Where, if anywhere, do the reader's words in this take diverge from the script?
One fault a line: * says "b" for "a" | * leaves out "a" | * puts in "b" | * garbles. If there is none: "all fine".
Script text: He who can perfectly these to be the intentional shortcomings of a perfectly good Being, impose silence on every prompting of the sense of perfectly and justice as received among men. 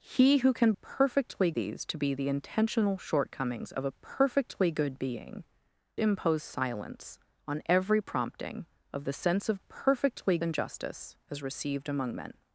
all fine